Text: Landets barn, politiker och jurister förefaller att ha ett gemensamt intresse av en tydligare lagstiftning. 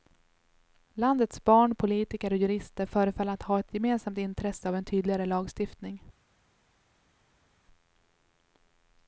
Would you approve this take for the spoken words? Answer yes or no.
yes